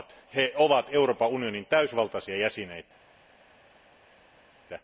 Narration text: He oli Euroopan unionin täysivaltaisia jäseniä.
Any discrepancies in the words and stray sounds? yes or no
yes